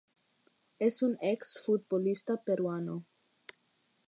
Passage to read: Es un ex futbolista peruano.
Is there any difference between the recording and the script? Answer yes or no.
no